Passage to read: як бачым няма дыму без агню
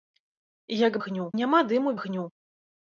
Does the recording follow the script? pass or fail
fail